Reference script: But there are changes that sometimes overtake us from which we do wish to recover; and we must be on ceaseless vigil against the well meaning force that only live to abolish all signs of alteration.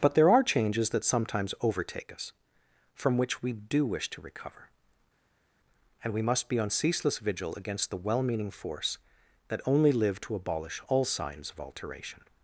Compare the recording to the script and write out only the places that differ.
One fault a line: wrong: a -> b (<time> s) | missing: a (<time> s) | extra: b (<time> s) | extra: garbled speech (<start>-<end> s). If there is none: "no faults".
no faults